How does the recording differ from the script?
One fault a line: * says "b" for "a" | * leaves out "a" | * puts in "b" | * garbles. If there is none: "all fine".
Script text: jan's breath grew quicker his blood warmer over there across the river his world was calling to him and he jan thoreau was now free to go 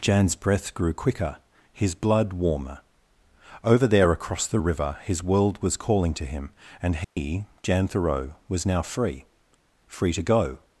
* puts in "free"